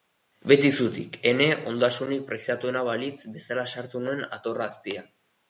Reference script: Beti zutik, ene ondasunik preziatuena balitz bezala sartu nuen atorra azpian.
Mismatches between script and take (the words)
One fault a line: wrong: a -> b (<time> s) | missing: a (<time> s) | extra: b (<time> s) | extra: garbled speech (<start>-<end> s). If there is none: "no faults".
no faults